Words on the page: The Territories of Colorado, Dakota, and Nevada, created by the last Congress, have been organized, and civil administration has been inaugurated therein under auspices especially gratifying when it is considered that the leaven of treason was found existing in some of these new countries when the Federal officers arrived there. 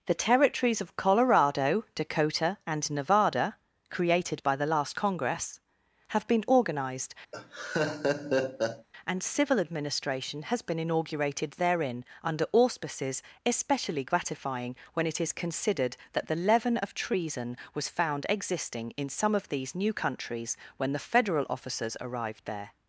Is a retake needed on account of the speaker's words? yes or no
no